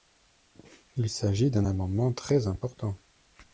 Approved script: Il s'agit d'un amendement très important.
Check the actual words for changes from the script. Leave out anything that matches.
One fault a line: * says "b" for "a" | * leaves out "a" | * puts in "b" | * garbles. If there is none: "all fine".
all fine